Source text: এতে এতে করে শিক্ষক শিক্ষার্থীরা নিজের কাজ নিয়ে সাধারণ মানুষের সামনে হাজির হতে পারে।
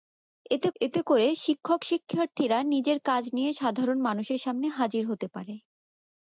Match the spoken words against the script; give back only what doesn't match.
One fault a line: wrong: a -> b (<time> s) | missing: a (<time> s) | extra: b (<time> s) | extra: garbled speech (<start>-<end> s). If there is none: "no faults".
no faults